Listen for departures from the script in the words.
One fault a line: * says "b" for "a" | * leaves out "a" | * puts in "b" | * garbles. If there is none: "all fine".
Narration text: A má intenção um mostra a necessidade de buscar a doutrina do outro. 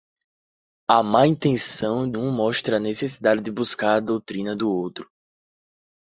all fine